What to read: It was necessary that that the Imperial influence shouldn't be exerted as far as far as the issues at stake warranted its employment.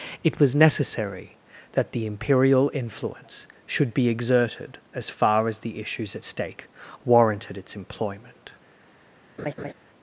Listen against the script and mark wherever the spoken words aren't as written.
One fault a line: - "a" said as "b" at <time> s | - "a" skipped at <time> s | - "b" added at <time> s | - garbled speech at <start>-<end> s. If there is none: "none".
- "that" skipped at 1.9 s
- "shouldn't" said as "should" at 3.6 s
- "far as" skipped at 5.6 s